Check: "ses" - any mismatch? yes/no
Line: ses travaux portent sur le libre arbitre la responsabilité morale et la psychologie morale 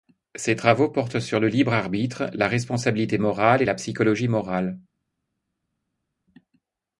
no